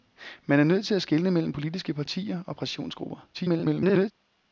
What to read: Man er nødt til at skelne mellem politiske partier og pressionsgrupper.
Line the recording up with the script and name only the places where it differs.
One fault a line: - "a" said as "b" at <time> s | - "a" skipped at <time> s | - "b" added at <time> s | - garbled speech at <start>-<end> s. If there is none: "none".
- garbled speech at 3.3-4.1 s